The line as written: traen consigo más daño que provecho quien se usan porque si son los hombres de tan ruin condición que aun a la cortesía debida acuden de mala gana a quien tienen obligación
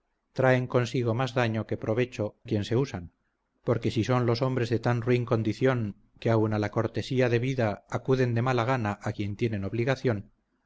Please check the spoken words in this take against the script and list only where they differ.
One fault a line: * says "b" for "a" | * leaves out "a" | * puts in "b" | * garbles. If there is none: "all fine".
all fine